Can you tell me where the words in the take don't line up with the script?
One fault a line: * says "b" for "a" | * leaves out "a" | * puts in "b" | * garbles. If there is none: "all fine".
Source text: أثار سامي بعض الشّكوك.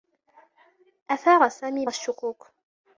* leaves out "بعض"